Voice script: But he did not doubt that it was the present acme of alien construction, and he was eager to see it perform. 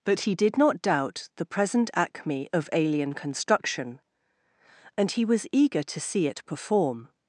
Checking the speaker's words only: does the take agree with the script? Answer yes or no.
no